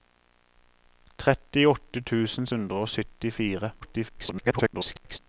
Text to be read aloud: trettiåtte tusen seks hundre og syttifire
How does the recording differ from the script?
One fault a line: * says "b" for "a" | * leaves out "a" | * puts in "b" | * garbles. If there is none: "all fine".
* leaves out "seks"
* garbles